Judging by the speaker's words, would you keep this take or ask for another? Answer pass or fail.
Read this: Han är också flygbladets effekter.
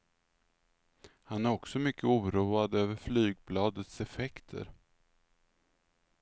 fail